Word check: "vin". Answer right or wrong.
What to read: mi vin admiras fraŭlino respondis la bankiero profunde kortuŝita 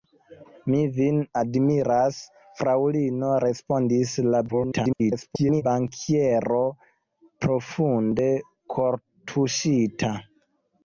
right